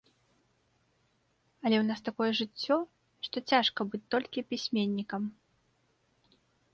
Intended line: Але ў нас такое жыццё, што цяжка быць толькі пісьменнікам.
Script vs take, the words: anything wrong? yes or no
no